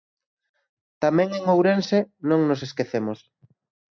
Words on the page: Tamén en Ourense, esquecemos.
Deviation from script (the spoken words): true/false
true